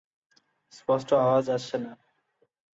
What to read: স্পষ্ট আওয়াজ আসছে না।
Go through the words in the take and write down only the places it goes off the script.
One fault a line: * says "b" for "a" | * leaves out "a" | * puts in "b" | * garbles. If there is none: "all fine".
all fine